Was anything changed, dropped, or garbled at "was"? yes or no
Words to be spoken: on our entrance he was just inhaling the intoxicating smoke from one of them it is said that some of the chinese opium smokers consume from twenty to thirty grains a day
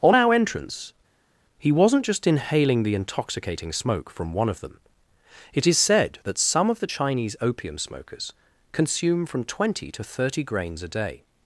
yes